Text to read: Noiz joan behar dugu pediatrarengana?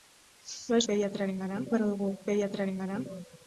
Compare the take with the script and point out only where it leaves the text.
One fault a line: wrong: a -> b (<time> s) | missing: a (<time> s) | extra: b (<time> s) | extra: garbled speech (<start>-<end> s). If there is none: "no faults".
wrong: joan -> pediatrarengana (0.9 s)